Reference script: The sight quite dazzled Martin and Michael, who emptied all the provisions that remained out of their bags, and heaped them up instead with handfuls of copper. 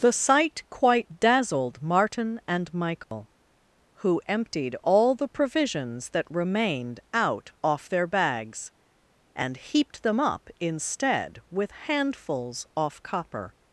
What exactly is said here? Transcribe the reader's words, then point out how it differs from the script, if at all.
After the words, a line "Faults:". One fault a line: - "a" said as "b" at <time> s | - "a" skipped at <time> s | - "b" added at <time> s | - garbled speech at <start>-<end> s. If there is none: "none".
The sight quite dazzled Martin and Michael, who emptied all the provisions that remained out off their bags, and heaped them up instead with handfuls off copper.
Faults:
- "of" said as "off" at 7.6 s
- "of" said as "off" at 12.8 s